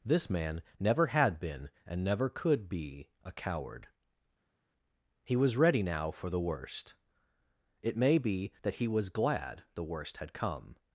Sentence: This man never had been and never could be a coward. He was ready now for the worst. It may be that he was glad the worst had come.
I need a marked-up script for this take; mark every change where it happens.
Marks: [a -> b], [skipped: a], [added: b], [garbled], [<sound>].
This man never had been and never could be a coward. He was ready now for the worst. It may be that he was glad the worst had come.